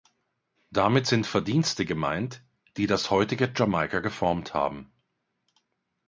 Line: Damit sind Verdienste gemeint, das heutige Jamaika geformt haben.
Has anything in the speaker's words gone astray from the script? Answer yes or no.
yes